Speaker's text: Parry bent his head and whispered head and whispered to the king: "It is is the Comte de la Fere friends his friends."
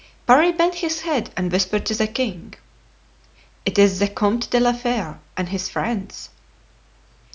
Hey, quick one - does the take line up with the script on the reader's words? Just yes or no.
no